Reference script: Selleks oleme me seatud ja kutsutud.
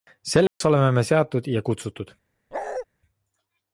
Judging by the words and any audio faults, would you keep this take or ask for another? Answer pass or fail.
fail